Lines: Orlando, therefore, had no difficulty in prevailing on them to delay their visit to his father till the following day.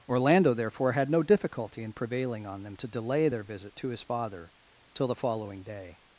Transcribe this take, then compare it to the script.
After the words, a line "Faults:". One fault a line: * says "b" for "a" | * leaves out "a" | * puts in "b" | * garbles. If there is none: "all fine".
Orlando, therefore, had no difficulty in prevailing on them to delay their visit to his father till the following day.
Faults:
all fine